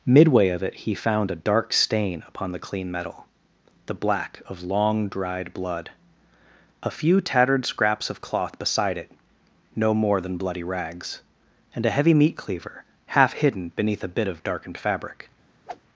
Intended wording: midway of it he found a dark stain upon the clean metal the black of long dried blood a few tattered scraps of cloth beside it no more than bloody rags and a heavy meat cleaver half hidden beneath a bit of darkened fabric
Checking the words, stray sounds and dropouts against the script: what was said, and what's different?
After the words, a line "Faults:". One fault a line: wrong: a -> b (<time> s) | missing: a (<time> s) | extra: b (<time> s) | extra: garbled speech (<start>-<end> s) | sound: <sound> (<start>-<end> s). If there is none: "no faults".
midway of it he found a dark stain upon the clean metal the black of long dried blood a few tattered scraps of cloth beside it no more than bloody rags and a heavy meat cleaver half hidden beneath a bit of darkened fabric
Faults:
sound: whoosh (15.7-15.8 s)